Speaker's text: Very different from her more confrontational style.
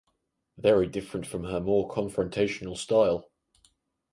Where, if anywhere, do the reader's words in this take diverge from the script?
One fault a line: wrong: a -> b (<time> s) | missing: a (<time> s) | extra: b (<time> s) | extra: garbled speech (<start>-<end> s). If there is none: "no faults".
no faults